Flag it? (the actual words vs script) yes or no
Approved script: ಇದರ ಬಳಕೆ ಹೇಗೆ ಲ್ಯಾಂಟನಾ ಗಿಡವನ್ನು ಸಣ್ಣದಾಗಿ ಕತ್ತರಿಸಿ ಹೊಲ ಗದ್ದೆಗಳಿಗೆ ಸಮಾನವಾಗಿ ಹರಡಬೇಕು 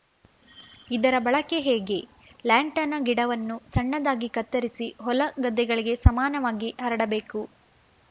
no